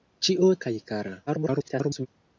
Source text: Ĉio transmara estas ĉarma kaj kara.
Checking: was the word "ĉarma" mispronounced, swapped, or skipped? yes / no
yes